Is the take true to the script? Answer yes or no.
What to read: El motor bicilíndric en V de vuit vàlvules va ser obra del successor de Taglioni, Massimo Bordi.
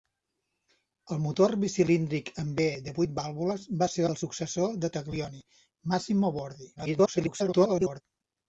no